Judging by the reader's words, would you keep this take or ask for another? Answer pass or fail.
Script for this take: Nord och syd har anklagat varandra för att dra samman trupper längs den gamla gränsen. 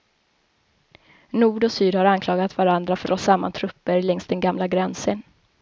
fail